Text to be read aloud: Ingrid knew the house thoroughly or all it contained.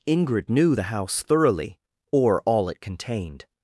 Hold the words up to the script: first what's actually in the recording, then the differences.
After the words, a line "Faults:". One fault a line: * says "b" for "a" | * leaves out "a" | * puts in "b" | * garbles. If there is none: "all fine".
Ingrid knew the house thoroughly or all it contained.
Faults:
all fine